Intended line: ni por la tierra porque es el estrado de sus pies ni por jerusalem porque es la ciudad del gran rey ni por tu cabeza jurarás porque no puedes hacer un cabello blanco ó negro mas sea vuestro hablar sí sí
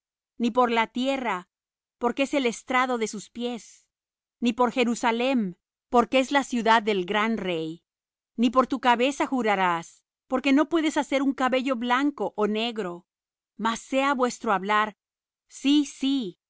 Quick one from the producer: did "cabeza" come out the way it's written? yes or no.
yes